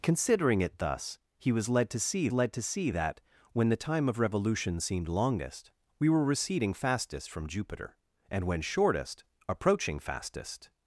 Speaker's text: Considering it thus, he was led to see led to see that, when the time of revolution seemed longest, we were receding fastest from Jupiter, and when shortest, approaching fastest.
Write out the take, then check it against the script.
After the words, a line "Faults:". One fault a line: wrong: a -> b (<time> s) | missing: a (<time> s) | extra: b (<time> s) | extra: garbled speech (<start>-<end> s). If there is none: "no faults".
Considering it thus, he was led to see led to see that, when the time of revolution seemed longest, we were receding fastest from Jupiter, and when shortest, approaching fastest.
Faults:
no faults